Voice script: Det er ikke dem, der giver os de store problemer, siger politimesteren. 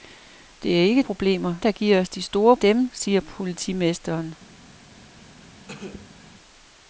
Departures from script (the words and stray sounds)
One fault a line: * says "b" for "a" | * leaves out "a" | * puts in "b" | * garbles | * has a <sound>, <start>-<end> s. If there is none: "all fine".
* says "problemer" for "dem"
* says "dem" for "problemer"
* has a cough, 5.7-6.2 s